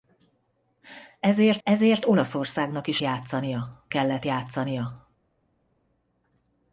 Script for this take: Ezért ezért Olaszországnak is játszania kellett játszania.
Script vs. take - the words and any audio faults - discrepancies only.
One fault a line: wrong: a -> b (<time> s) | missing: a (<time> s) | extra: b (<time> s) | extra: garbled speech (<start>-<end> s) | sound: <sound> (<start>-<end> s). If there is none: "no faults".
no faults